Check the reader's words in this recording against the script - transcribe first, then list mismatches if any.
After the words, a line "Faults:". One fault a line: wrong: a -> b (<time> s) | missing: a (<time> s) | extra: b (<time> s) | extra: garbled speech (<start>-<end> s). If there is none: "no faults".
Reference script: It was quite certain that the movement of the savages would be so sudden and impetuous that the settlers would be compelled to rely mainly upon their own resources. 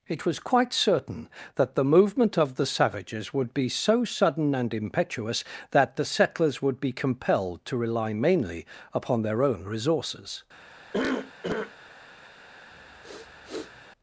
It was quite certain that the movement of the savages would be so sudden and impetuous that the settlers would be compelled to rely mainly upon their own resources.
Faults:
no faults